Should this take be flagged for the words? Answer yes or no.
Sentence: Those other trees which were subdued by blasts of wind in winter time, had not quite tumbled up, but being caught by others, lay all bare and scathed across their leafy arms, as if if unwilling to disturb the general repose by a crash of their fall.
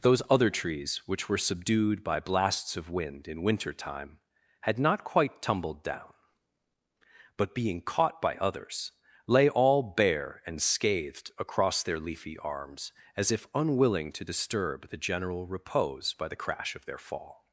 yes